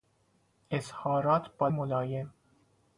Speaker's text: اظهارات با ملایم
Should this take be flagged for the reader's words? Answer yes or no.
no